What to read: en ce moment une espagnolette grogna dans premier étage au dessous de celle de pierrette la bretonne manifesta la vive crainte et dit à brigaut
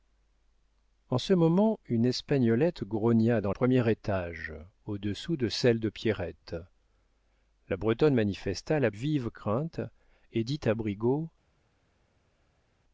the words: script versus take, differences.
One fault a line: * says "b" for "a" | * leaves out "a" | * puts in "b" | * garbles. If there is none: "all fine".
all fine